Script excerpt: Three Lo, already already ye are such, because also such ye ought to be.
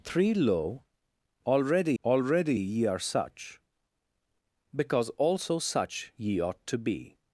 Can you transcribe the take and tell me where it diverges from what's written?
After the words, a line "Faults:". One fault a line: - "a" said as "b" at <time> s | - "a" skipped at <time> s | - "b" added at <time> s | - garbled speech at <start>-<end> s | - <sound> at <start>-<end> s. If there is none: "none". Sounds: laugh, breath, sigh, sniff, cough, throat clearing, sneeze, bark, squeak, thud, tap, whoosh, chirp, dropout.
Three Lo, already already ye are such, because also such ye ought to be.
Faults:
none